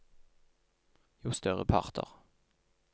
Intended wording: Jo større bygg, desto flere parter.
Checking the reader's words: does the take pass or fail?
fail